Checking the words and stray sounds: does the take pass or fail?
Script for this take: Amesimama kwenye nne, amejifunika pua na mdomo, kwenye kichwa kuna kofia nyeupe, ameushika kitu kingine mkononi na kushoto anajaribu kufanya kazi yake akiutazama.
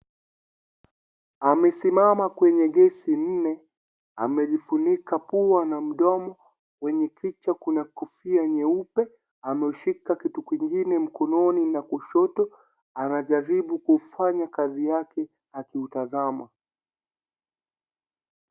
fail